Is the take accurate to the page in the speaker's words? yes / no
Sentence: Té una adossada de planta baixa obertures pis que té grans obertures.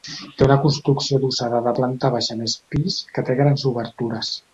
no